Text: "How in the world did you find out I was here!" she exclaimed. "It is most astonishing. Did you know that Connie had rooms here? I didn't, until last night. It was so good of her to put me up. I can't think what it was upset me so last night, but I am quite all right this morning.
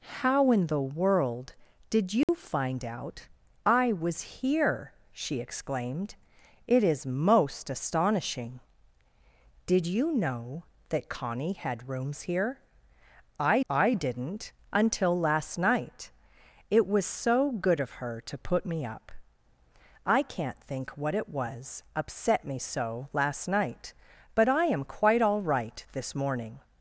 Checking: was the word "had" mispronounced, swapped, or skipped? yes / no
no